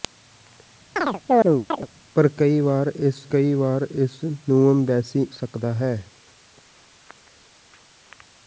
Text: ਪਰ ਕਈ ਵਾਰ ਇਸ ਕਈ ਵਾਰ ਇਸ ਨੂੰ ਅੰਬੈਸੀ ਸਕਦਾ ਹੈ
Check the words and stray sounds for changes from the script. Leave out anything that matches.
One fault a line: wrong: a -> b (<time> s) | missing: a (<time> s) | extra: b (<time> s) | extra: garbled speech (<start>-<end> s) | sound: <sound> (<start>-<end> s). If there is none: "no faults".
sound: chirp (1.0-1.9 s)